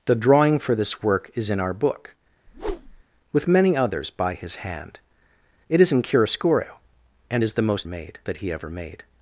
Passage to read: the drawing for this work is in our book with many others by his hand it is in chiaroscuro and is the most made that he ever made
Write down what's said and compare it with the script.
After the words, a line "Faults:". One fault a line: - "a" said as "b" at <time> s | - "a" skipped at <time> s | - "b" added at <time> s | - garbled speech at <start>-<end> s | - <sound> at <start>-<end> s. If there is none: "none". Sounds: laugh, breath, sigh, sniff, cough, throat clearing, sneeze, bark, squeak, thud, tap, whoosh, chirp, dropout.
the drawing for this work is in our book with many others by his hand it is in chiaroscuro and is the most made that he ever made
Faults:
- whoosh at 2.5-3.0 s